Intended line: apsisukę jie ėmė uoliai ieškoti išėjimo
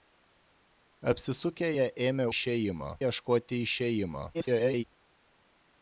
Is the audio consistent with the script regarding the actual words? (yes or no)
no